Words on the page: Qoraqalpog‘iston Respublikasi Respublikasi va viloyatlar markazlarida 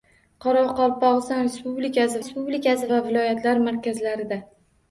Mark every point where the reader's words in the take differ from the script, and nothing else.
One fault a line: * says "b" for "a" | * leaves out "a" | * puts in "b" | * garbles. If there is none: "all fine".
all fine